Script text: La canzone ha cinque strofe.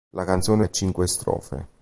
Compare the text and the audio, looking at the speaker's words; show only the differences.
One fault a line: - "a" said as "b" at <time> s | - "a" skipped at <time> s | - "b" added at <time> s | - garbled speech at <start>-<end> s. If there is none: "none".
none